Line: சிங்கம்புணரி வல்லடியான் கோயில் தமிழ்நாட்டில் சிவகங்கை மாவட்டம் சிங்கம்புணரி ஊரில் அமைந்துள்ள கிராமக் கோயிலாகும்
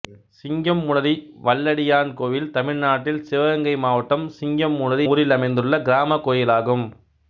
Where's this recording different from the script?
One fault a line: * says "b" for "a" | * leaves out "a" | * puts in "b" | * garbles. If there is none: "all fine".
all fine